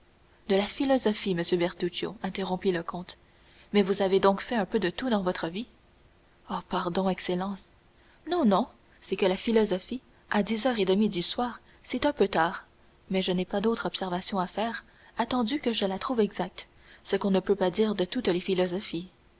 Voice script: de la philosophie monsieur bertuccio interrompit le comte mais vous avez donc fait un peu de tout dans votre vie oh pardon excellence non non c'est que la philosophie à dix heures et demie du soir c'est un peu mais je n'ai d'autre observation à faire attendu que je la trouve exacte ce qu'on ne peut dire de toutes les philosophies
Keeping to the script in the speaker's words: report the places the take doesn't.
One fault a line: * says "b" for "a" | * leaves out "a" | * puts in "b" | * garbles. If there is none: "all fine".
* puts in "tard"
* puts in "pas"
* puts in "pas"